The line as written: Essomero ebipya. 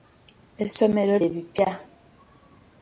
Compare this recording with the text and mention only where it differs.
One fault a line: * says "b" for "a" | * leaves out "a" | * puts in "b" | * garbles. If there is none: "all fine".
all fine